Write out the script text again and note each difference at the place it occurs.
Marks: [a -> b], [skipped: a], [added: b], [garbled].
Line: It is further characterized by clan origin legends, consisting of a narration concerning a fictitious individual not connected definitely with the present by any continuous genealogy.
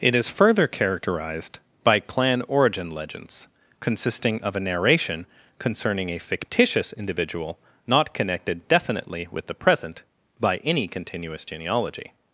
It is further characterized by clan origin legends, consisting of a narration concerning a fictitious individual not connected definitely with the present by any continuous genealogy.